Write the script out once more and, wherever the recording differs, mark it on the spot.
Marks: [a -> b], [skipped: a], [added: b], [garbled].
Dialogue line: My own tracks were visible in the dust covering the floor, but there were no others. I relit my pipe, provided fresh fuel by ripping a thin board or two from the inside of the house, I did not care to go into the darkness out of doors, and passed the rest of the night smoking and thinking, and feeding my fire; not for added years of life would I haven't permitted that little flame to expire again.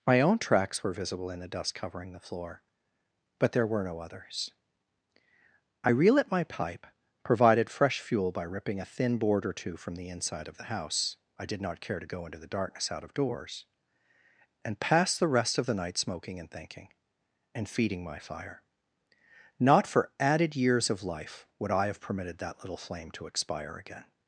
My own tracks were visible in the dust covering the floor, but there were no others. I relit my pipe, provided fresh fuel by ripping a thin board or two from the inside of the house, I did not care to go into the darkness out of doors, and passed the rest of the night smoking and thinking, and feeding my fire; not for added years of life would I [haven't -> have] permitted that little flame to expire again.